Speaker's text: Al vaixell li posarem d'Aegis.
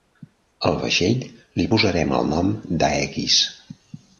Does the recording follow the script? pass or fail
fail